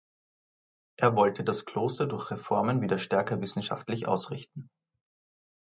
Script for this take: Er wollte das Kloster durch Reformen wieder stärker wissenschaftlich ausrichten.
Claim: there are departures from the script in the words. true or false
false